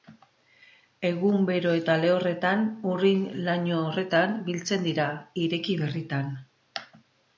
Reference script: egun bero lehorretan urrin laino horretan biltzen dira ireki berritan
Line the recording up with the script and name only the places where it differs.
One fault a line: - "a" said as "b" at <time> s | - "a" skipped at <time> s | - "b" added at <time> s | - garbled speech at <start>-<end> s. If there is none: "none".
- "eta" added at 1.8 s